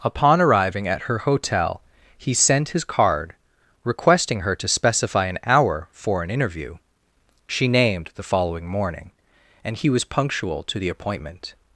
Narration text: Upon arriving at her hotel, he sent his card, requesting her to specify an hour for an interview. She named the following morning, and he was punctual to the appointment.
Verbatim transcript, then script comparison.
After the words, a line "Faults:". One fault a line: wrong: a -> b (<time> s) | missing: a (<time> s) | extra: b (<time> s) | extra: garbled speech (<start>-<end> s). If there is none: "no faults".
Upon arriving at her hotel, he sent his card, requesting her to specify an hour for an interview. She named the following morning, and he was punctual to the appointment.
Faults:
no faults